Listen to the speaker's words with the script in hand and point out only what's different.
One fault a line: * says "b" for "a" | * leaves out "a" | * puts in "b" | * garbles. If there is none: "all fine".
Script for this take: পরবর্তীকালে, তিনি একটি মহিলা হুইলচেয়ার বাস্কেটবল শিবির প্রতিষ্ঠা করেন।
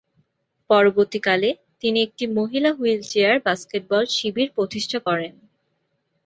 all fine